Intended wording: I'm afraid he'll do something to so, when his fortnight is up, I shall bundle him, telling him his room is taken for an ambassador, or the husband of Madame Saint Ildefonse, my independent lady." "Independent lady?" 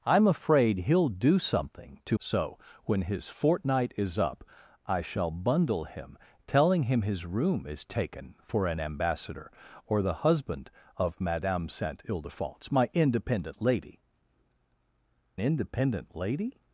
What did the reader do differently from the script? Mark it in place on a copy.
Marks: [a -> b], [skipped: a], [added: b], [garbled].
I'm afraid he'll do something to so, when his fortnight is up, I shall bundle him, telling him his room is taken for an ambassador, or the husband of Madame Saint Ildefonse, my independent lady." "Independent lady?"